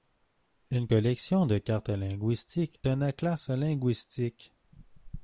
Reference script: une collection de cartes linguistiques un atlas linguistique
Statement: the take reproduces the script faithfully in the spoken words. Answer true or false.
true